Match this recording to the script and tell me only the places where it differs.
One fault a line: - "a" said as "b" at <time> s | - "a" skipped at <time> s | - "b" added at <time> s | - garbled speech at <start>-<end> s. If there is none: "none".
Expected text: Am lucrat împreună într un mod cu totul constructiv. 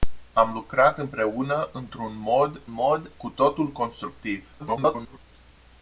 - "mod" added at 2.7 s
- garbled speech at 4.6-5.2 s